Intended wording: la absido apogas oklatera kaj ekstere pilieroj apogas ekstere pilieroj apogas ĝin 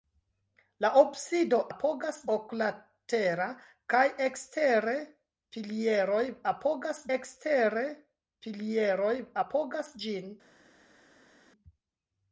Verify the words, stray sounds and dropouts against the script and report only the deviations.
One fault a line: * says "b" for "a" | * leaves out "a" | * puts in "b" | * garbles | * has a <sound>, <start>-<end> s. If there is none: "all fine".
all fine